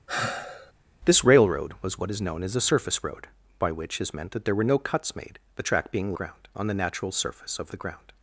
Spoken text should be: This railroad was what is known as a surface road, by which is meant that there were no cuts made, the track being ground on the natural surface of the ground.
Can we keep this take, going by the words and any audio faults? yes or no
no